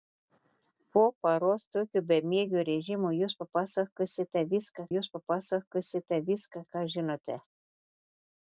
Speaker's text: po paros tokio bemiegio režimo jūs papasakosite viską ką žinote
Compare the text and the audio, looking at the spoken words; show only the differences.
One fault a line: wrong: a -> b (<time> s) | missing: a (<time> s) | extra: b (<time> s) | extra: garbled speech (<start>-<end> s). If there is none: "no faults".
extra: jūs papasakosite viską (4.9 s)